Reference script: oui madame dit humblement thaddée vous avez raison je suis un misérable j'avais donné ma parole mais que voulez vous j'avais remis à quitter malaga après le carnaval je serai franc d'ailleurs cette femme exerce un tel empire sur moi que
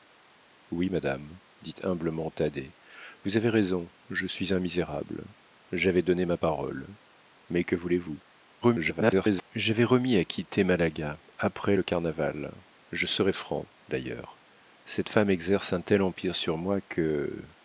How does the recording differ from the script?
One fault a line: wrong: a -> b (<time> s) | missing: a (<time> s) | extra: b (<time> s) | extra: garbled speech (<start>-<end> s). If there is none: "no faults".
extra: garbled speech (8.6-9.5 s)